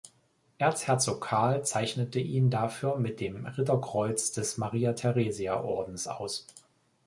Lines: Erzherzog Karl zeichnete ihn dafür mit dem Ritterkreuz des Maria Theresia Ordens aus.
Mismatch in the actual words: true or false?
false